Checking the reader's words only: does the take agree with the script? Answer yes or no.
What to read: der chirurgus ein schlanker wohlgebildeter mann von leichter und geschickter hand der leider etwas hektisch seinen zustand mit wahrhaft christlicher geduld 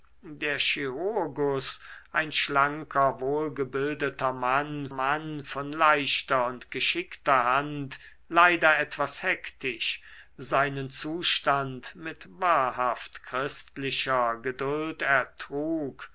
no